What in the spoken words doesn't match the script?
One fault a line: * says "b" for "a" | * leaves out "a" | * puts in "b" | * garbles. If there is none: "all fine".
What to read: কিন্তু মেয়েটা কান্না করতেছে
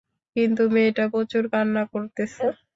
* puts in "প্রচুর"